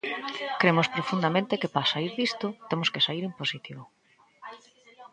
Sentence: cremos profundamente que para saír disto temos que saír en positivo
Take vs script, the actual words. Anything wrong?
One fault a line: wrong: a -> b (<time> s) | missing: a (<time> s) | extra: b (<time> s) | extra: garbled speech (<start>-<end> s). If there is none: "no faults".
no faults